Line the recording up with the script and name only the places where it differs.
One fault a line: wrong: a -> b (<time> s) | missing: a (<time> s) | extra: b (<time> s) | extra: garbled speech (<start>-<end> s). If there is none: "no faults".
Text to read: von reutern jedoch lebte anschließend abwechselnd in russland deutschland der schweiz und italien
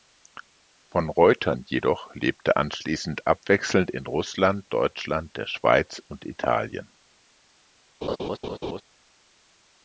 no faults